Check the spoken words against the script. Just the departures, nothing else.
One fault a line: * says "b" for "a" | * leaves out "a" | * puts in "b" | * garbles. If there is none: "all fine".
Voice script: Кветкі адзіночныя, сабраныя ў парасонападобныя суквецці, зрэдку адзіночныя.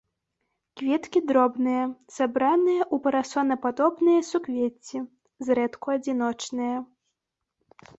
* says "дробныя" for "адзіночныя"